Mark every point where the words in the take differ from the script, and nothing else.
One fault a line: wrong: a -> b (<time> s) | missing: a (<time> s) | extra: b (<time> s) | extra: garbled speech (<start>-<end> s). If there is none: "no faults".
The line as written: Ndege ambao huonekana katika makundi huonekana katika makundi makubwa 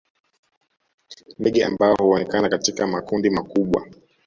missing: huonekana katika makundi (3.3 s)